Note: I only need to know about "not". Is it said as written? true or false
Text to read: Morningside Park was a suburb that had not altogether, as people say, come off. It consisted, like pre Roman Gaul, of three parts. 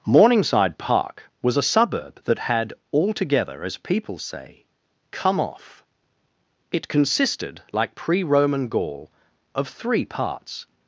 false